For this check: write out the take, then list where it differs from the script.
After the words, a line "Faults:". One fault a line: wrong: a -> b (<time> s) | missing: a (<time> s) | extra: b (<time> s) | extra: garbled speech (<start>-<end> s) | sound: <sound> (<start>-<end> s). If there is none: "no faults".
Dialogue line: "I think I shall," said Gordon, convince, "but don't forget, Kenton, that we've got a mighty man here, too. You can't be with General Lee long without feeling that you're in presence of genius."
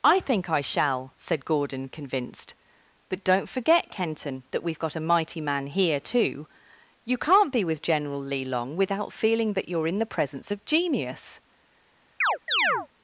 "I think I shall," said Gordon, convinced, "but don't forget, Kenton, that we've got a mighty man here, too. You can't be with General Lee long without feeling that you're in the presence of genius."
Faults:
wrong: convince -> convinced (1.9 s)
extra: the (10.0 s)
sound: chirp (12.2-12.9 s)